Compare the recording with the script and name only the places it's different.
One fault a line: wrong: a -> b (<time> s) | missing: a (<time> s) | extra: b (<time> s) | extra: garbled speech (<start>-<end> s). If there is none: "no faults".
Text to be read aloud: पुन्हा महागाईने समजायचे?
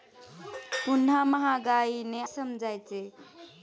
no faults